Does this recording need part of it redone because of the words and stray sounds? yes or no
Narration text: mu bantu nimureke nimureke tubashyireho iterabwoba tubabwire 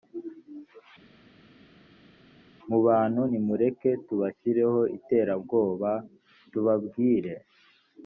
yes